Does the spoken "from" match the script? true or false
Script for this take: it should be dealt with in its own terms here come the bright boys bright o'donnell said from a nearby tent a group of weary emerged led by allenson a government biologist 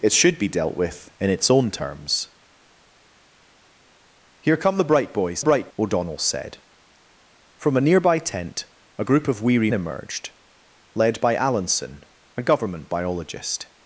true